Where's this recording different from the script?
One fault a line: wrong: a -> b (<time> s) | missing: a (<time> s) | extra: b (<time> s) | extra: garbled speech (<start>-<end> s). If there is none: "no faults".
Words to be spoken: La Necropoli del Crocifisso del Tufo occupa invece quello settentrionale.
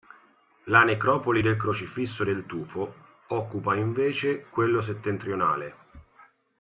no faults